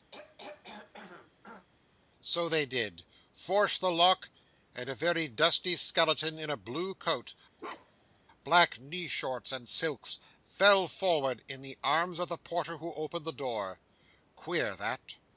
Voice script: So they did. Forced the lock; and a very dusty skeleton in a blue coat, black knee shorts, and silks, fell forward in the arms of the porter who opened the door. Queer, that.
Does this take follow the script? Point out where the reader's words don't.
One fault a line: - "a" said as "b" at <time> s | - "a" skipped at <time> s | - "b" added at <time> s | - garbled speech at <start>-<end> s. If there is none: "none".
none